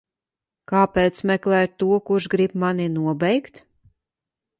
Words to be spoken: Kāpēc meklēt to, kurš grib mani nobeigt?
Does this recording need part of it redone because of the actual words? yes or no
no